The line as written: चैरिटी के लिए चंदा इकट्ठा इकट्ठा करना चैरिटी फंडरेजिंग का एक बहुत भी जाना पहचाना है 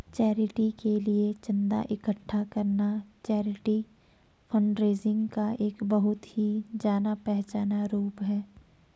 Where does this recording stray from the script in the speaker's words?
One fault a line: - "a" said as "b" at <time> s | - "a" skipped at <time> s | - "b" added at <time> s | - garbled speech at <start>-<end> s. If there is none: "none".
- "इकट्ठा" skipped at 2.4 s
- "भी" said as "ही" at 6.3 s
- "रूप" added at 7.9 s